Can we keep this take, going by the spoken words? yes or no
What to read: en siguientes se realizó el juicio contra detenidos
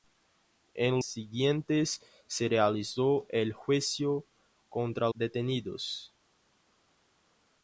yes